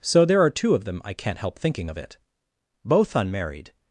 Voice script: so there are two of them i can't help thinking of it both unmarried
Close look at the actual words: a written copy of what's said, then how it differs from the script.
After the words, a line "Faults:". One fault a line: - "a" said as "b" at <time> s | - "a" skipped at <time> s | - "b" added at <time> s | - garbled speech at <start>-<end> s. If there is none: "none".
so there are two of them i can't help thinking of it both unmarried
Faults:
none